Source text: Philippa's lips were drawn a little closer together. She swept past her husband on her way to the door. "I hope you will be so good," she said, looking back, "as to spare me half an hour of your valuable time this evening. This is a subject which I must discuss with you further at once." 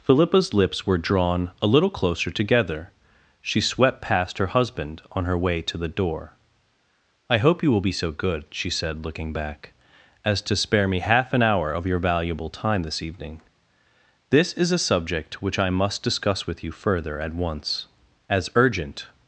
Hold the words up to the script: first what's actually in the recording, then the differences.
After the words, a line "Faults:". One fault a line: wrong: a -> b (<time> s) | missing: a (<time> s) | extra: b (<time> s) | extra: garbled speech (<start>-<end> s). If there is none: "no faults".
Philippa's lips were drawn a little closer together. She swept past her husband on her way to the door. "I hope you will be so good," she said, looking back, "as to spare me half an hour of your valuable time this evening. This is a subject which I must discuss with you further at once." "As urgent
Faults:
extra: As urgent (18.3 s)